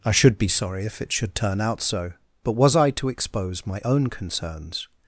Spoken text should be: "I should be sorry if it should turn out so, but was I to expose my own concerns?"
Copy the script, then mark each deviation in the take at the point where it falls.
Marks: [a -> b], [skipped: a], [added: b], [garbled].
"I should be sorry if it should turn out so, but was I to expose my own concerns?"